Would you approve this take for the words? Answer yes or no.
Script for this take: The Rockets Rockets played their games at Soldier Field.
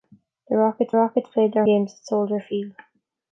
yes